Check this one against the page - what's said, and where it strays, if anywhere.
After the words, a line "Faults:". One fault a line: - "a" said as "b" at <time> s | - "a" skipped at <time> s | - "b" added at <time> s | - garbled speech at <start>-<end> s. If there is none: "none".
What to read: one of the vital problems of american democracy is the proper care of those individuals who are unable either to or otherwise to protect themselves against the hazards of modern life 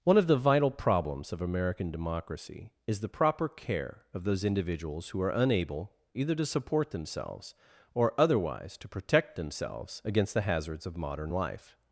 one of the vital problems of american democracy is the proper care of those individuals who are unable either to support themselves or otherwise to protect themselves against the hazards of modern life
Faults:
- "support themselves" added at 6.5 s